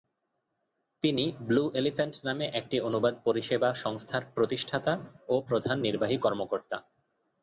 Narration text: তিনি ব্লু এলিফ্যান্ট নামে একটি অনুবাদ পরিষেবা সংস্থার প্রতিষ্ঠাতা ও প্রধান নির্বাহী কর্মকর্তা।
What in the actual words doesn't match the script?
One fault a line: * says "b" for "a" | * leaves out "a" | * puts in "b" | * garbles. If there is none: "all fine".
all fine